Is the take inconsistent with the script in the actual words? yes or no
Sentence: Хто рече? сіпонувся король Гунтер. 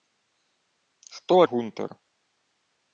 yes